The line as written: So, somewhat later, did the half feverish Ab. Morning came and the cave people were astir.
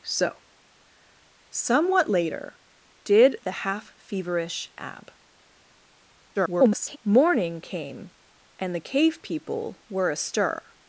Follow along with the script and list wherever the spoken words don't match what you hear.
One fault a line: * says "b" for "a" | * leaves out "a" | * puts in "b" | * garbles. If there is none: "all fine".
* garbles